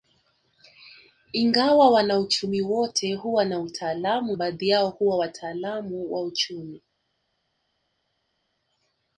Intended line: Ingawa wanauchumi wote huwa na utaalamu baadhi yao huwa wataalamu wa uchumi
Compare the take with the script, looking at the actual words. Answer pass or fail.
pass